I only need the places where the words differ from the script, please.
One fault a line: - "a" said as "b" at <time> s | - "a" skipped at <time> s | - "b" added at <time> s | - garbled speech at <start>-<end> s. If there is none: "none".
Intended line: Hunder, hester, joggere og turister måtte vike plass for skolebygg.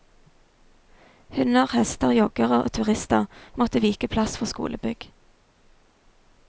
none